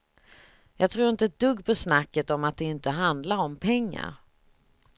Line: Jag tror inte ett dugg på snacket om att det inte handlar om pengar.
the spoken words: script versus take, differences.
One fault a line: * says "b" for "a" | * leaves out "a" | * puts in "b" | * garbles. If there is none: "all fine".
all fine